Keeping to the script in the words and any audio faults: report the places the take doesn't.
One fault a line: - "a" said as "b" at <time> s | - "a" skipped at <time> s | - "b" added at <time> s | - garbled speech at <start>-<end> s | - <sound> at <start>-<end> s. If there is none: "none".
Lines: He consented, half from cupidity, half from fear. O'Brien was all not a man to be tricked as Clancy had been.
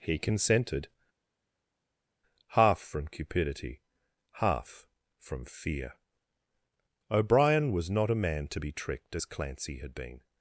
- "all" skipped at 7.9 s